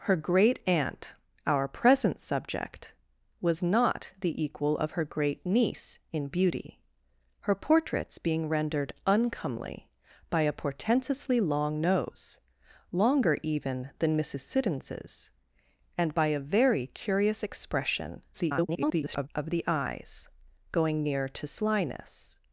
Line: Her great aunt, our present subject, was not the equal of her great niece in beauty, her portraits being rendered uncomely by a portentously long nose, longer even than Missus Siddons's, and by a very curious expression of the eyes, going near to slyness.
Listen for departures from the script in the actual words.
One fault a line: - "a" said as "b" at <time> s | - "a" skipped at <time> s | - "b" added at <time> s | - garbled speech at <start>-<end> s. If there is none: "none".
- garbled speech at 18.3-19.3 s